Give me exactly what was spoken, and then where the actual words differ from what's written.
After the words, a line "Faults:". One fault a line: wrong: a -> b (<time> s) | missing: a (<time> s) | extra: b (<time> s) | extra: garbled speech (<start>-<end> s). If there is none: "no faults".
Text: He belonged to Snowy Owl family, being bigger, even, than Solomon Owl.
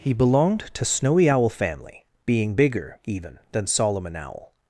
He belonged to Snowy Owl family, being bigger, even, than Solomon Owl.
Faults:
no faults